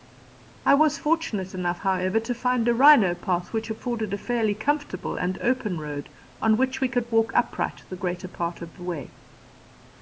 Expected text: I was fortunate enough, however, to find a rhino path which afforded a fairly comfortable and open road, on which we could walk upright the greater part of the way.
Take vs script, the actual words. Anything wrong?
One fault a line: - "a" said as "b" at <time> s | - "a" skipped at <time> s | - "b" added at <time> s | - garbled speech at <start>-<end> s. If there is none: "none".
none